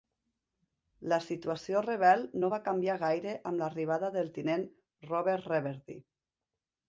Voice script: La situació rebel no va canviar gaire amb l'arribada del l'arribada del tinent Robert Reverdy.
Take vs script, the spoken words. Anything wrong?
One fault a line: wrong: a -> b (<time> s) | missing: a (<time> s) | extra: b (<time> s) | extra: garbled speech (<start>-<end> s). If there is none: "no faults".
missing: l'arribada del (4.3 s)